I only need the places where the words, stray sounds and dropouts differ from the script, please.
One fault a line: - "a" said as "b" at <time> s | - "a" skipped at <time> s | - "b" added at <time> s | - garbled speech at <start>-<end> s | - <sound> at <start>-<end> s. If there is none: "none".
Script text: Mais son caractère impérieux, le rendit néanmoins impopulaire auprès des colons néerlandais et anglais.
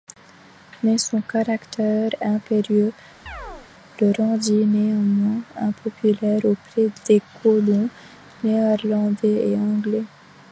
- chirp at 3.3-3.7 s